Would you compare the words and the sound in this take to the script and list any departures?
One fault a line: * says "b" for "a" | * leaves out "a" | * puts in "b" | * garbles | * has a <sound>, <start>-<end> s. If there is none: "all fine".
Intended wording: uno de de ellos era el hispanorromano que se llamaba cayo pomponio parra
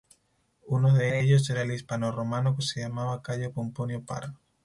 all fine